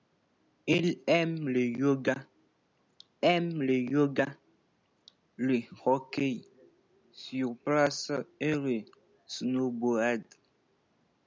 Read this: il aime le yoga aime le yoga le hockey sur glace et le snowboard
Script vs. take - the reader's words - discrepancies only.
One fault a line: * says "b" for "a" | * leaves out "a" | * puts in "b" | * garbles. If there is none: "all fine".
all fine